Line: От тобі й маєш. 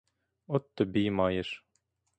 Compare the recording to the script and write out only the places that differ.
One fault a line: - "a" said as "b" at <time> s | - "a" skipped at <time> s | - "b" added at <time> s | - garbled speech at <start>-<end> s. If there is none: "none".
none